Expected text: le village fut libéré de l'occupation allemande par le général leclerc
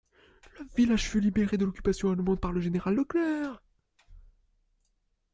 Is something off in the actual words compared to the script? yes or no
no